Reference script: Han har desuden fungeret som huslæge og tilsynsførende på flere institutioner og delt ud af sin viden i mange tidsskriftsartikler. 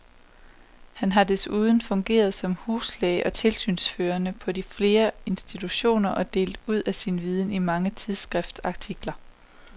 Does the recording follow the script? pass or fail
pass